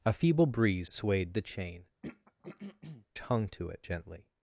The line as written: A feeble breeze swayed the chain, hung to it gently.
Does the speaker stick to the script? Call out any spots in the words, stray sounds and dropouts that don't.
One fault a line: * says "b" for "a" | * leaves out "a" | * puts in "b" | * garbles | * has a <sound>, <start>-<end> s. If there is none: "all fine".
* has a throat clearing, 2.0-3.1 s